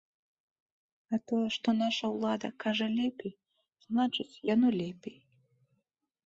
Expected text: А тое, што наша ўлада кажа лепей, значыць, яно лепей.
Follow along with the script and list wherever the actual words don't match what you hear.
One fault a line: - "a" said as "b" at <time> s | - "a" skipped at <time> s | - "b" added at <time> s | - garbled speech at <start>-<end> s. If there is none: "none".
none